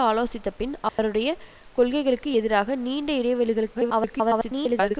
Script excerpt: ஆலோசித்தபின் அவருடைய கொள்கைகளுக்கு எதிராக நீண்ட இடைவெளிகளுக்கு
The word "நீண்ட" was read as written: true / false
true